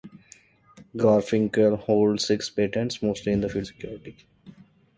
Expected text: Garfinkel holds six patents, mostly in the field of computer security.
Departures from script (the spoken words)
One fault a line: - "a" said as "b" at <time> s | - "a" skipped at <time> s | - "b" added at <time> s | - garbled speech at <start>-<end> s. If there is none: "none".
- "of computer" skipped at 3.7 s